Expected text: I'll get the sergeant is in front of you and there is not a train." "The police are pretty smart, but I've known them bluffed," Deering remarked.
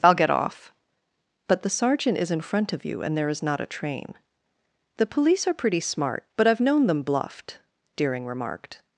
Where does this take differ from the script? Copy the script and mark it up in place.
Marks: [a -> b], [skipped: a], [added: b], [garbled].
I'll get [added: off But] the sergeant is in front of you and there is not a train." "The police are pretty smart, but I've known them bluffed," Deering remarked.